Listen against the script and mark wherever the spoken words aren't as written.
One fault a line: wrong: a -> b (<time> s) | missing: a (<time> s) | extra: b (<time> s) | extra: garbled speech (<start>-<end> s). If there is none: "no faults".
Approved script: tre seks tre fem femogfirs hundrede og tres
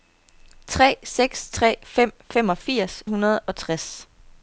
no faults